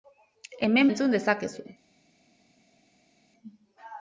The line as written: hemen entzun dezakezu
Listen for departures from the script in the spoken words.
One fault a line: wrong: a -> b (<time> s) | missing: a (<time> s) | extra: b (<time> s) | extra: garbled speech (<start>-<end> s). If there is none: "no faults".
no faults